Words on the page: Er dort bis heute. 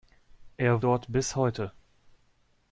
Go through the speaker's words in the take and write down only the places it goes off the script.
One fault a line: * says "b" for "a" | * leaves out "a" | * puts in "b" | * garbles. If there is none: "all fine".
all fine